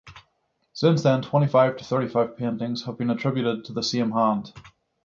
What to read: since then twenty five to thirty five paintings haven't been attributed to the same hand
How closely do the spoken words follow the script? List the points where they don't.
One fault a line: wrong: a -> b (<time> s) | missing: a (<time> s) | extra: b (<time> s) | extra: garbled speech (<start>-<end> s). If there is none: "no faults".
wrong: haven't -> have (2.9 s)